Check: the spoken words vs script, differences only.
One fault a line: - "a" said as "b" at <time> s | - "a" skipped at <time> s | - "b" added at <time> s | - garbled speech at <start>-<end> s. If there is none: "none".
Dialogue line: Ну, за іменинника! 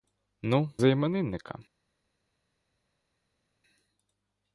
none